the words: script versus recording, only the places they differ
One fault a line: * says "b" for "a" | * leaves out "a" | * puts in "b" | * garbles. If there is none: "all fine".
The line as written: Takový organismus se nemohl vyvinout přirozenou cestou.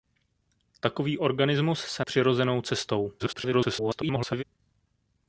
* leaves out "nemohl vyvinout"
* garbles